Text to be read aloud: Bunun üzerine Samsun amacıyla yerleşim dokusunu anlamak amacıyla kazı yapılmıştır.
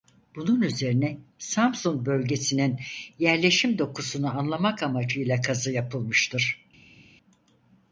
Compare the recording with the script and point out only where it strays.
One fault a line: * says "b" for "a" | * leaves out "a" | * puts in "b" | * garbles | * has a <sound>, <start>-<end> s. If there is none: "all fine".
* says "bölgesinin" for "amacıyla"